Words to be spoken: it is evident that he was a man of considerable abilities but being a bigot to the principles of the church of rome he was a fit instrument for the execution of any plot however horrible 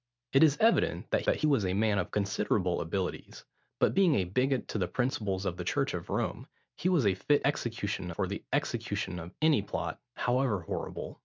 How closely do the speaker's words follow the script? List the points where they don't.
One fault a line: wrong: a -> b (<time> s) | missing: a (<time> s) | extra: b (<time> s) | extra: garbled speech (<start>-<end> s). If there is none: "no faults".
extra: that (1.3 s)
wrong: instrument -> execution (7.4 s)